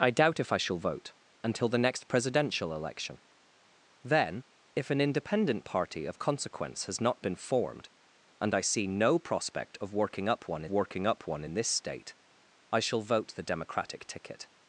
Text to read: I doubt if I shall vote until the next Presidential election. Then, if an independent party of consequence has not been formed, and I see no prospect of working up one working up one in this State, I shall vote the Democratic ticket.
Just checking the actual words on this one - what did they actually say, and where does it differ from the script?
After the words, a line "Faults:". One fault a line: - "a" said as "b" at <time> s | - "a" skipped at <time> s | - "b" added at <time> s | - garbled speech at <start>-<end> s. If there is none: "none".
I doubt if I shall vote until the next Presidential election. Then, if an independent party of consequence has not been formed, and I see no prospect of working up one working up one in this State, I shall vote the Democratic ticket.
Faults:
none